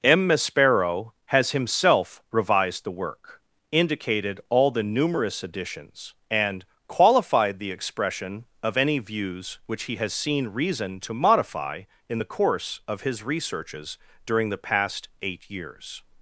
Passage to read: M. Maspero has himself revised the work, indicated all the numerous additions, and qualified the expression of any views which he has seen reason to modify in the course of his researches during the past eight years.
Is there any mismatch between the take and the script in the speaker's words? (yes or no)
no